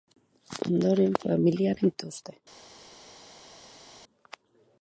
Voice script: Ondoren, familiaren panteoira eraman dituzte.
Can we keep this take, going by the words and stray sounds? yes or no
no